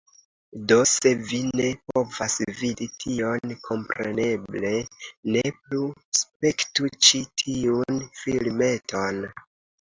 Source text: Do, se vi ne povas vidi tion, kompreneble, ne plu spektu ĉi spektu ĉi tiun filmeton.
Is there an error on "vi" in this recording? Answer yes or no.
no